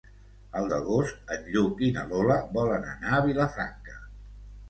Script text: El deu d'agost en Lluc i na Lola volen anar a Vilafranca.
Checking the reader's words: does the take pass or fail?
fail